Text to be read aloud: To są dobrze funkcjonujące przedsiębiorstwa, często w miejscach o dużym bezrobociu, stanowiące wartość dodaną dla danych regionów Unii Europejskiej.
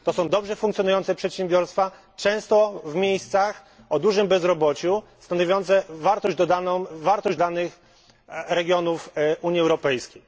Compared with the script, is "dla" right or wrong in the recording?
wrong